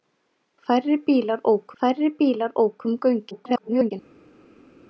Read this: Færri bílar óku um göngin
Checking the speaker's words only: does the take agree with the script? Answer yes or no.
no